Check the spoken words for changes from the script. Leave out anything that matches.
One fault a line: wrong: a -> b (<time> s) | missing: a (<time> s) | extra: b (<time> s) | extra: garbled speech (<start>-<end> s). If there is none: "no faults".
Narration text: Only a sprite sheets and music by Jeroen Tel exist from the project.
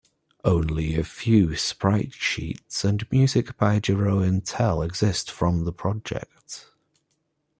extra: few (1.0 s)